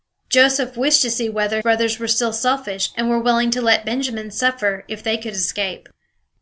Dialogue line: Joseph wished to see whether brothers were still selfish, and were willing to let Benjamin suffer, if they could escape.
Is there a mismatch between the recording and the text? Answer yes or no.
no